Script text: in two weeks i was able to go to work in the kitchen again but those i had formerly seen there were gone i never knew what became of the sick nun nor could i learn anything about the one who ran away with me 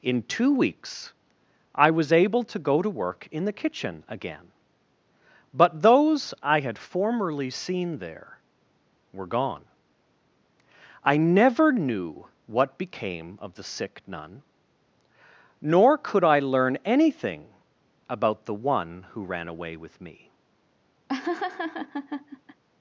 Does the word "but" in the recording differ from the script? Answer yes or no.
no